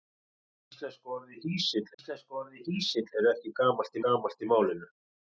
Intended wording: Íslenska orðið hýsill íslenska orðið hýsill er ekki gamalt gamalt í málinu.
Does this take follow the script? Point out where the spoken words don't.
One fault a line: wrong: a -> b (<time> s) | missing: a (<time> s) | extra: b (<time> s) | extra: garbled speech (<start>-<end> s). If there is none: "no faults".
no faults